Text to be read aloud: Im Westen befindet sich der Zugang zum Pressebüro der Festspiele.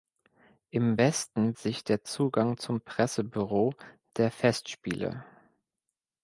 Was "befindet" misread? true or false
true